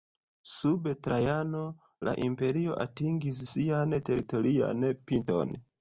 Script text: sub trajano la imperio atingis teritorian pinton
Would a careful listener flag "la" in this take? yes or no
no